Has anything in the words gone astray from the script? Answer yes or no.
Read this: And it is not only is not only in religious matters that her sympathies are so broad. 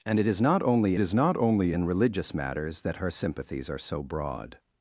no